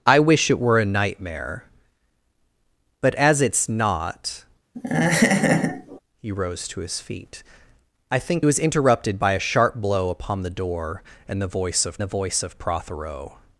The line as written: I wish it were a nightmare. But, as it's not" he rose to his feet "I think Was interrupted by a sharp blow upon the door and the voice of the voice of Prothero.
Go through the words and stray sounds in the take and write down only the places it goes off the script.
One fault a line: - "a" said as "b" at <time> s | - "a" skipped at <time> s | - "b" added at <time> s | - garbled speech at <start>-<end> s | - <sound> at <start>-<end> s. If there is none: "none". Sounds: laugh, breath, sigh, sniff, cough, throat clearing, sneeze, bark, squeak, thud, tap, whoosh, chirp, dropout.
- laugh at 4.7-6.0 s